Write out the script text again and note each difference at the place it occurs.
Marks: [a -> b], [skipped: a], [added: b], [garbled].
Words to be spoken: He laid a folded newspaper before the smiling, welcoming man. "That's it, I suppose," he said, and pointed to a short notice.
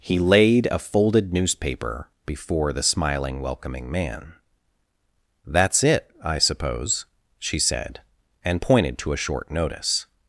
He laid a folded newspaper before the smiling, welcoming man. "That's it, I suppose," [he -> she] said, and pointed to a short notice.